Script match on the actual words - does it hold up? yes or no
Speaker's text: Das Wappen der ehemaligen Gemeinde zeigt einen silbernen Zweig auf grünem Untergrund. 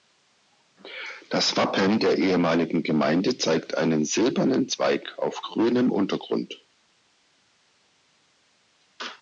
yes